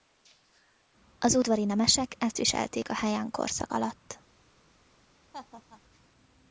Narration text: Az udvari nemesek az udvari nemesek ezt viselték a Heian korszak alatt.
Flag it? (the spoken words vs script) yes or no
yes